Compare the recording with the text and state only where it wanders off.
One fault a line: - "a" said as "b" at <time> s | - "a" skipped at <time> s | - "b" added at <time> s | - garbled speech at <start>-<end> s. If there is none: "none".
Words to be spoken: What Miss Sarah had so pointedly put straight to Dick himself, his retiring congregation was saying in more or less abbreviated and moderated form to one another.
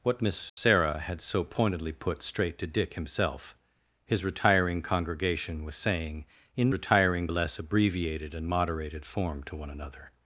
- "more" said as "retiring" at 6.7 s